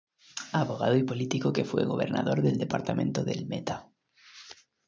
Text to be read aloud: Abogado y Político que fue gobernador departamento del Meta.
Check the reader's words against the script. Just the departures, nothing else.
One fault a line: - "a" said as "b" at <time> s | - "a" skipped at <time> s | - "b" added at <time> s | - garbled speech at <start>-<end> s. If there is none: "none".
- "del" added at 2.4 s